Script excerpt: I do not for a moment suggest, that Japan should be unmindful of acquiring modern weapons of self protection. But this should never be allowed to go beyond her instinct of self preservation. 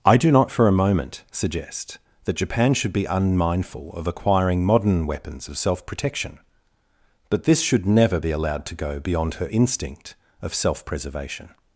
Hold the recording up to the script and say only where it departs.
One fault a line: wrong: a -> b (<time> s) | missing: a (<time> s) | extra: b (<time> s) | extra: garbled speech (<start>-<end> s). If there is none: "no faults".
no faults